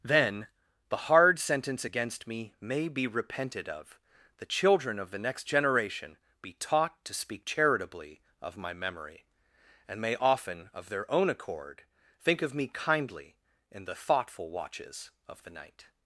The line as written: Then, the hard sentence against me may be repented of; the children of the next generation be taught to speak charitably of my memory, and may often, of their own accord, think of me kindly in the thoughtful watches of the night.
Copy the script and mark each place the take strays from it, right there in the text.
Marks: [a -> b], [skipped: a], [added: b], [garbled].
Then, the hard sentence against me may be repented of; the children of the next generation be taught to speak charitably of my memory, and may often, of their own accord, think of me kindly in the thoughtful watches of the night.